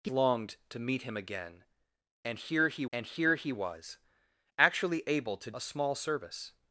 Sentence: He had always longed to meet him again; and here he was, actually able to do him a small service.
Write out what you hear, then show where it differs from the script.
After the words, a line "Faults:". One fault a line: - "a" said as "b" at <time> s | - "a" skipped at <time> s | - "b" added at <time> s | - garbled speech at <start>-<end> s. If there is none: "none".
He longed to meet him again; and here he and here he was, actually able to a small service.
Faults:
- "had always" skipped at 0.1 s
- "and here he" added at 2.9 s
- "do him" skipped at 5.5 s